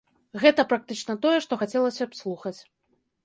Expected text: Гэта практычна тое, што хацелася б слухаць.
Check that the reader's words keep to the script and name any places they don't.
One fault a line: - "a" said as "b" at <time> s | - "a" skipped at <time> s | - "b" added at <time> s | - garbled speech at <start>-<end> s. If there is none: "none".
none